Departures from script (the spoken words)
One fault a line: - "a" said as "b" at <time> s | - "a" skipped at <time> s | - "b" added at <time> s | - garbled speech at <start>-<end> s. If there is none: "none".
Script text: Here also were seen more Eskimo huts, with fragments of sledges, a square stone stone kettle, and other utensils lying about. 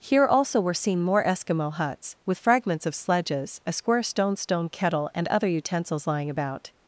none